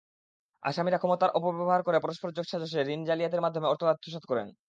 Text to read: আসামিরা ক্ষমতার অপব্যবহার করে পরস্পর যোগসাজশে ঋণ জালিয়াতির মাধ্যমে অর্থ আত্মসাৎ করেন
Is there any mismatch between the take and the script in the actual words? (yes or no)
no